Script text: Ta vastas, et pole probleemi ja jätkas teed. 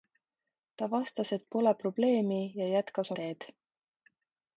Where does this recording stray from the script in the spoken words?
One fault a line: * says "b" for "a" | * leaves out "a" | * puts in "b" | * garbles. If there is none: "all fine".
all fine